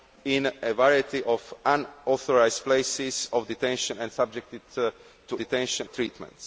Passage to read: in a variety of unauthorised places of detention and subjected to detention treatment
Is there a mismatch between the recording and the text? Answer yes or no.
no